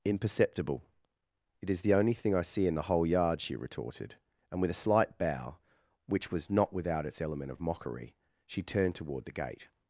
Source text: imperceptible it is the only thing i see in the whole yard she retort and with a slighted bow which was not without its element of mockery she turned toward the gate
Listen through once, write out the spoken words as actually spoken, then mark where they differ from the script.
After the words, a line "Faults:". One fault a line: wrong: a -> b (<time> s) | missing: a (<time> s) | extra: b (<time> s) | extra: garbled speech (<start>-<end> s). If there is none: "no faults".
imperceptible it is the only thing i see in the whole yard she retorted and with a slight bow which was not without its element of mockery she turned toward the gate
Faults:
wrong: retort -> retorted (3.5 s)
wrong: slighted -> slight (4.8 s)